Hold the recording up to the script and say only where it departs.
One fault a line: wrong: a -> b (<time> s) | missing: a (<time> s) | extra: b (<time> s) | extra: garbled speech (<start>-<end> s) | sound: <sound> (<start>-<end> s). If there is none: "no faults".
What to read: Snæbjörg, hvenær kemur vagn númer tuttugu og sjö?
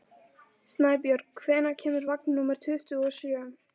no faults